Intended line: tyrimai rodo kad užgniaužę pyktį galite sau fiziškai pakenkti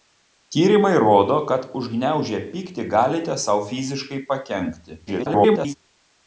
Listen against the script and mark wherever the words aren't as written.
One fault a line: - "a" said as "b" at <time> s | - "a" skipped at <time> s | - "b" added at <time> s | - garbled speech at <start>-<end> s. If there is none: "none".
- garbled speech at 5.1-5.7 s